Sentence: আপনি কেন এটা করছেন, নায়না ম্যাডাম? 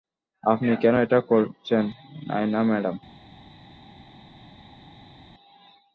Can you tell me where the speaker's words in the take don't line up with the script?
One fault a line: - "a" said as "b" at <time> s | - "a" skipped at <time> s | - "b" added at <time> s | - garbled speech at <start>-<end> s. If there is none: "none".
none